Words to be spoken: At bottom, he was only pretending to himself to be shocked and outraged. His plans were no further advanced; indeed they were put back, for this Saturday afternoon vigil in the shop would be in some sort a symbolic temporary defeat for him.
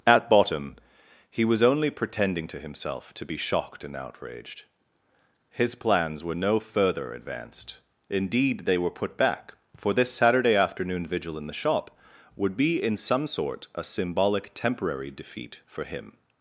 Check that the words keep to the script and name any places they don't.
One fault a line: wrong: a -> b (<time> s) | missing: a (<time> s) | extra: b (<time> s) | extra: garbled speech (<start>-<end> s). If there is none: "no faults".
no faults